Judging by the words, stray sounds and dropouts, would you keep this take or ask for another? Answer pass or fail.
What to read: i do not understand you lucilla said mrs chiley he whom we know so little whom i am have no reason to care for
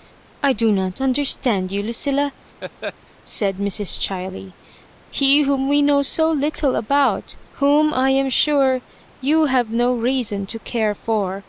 fail